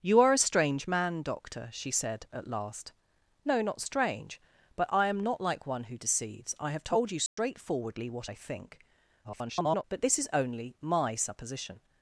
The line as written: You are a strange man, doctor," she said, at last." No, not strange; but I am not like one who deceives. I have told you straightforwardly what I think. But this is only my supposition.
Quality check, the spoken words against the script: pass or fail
fail